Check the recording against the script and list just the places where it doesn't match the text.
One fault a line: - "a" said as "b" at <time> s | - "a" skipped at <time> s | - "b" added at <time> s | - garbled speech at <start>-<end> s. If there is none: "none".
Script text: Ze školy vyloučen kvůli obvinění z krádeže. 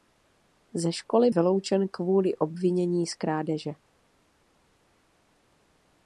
none